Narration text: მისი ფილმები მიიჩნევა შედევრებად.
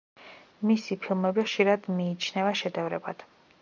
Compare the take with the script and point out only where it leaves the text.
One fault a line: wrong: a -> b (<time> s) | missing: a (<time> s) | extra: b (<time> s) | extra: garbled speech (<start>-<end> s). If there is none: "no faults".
extra: ხშირად (1.5 s)